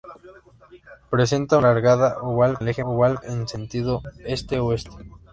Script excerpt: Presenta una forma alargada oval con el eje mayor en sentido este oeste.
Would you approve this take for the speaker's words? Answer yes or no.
no